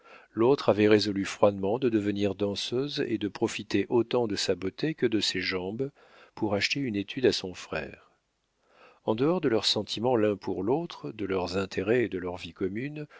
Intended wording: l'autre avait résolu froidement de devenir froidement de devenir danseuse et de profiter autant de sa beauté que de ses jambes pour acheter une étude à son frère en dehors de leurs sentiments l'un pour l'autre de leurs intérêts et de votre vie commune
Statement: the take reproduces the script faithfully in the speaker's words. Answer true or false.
false